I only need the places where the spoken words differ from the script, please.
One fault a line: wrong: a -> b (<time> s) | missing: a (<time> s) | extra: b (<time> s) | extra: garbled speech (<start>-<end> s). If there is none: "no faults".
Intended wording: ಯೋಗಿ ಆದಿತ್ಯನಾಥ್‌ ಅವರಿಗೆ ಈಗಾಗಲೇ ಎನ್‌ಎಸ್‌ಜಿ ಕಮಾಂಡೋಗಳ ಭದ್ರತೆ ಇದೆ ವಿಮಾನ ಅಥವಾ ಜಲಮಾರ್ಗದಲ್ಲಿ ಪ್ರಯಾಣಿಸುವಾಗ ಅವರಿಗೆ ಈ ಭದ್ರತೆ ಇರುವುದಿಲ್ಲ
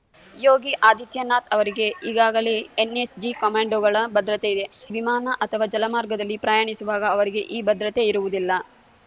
no faults